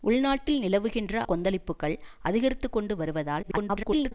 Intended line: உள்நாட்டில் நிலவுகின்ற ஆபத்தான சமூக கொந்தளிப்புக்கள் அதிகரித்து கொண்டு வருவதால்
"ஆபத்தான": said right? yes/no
no